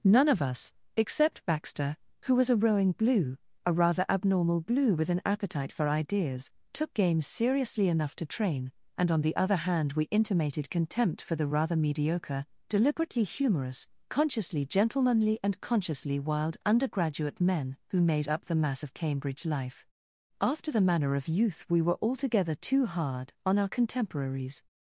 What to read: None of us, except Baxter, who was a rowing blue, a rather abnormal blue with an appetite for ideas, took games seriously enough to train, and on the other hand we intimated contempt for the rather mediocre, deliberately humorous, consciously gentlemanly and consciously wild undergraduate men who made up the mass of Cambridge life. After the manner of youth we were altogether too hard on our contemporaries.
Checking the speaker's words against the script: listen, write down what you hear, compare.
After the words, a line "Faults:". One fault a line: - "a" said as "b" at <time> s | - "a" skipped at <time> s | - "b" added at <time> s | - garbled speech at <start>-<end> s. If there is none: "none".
None of us, except Baxter, who was a rowing blue, a rather abnormal blue with an appetite for ideas, took games seriously enough to train, and on the other hand we intimated contempt for the rather mediocre, deliberately humorous, consciously gentlemanly and consciously wild undergraduate men who made up the mass of Cambridge life. After the manner of youth we were altogether too hard on our contemporaries.
Faults:
none